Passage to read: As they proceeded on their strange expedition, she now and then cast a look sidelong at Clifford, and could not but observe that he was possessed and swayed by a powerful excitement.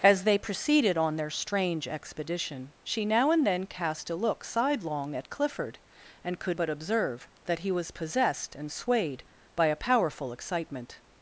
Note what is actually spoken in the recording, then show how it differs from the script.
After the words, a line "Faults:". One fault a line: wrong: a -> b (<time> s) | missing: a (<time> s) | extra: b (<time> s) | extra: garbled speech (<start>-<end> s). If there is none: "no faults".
As they proceeded on their strange expedition, she now and then cast a look sidelong at Clifford, and could but observe that he was possessed and swayed by a powerful excitement.
Faults:
missing: not (6.6 s)